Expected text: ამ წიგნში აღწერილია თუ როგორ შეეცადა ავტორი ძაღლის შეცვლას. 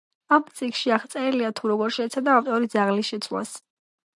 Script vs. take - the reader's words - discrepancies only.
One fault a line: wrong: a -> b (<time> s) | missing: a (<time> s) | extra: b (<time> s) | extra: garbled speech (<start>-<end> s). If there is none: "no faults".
no faults